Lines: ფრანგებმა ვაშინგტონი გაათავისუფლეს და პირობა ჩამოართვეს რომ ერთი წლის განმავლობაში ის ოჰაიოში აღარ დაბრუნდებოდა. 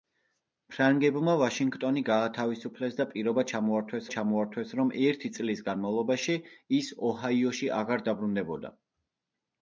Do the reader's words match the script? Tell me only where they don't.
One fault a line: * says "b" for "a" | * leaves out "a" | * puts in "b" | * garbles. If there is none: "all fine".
* puts in "ჩამოართვეს"